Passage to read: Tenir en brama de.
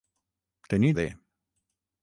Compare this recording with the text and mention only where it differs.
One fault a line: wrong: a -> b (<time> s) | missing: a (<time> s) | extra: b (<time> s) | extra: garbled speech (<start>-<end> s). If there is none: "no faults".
missing: en brama (1.0 s)